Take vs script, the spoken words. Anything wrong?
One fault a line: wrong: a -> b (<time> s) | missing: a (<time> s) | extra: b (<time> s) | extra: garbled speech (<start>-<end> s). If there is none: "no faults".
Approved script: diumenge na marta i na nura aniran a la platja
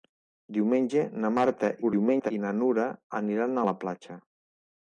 extra: garbled speech (1.8-2.3 s)